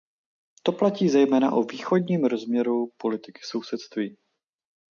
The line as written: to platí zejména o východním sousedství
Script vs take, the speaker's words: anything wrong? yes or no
yes